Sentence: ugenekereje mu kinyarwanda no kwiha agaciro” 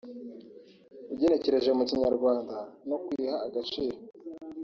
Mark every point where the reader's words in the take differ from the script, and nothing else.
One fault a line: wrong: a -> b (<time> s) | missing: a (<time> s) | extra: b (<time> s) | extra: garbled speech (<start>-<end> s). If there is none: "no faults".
no faults